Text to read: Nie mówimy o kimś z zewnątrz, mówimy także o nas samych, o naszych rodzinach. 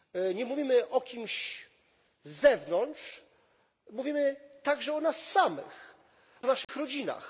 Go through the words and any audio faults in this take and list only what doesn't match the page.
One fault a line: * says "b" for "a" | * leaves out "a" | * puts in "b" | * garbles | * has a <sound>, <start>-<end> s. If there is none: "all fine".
* has a dropout, 6.6-6.7 s